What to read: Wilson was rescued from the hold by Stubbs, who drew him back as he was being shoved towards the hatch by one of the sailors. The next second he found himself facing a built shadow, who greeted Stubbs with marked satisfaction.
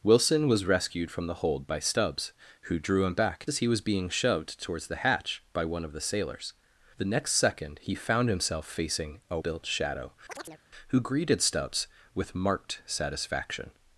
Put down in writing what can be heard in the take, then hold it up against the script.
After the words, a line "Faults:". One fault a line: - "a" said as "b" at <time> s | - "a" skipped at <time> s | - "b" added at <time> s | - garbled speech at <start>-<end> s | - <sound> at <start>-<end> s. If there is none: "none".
Wilson was rescued from the hold by Stubbs, who drew him back as he was being shoved towards the hatch by one of the sailors. The next second he found himself facing a built shadow, who greeted Stubbs with marked satisfaction.
Faults:
- chirp at 10.3-10.6 s